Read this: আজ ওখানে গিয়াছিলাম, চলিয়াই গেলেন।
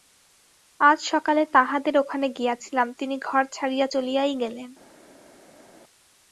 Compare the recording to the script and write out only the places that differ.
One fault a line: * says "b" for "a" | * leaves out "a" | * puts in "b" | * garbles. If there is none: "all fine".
* puts in "সকালে তাঁহাদের"
* puts in "তিনি ঘর ছাড়িয়া"